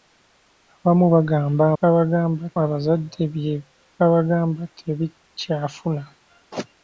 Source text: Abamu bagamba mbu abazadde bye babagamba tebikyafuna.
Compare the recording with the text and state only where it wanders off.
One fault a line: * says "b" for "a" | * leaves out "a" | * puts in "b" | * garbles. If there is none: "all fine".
* says "babagamba" for "mbu"